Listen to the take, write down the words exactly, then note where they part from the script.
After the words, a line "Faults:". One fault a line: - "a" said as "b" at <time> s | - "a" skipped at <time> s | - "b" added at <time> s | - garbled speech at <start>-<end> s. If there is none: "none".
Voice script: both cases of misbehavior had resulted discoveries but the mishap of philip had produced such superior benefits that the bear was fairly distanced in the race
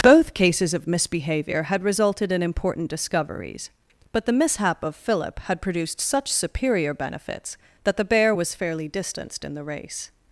both cases of misbehavior had resulted in important discoveries but the mishap of philip had produced such superior benefits that the bear was fairly distanced in the race
Faults:
- "in important" added at 2.3 s